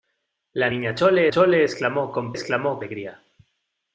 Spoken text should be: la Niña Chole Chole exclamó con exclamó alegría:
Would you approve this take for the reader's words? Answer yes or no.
yes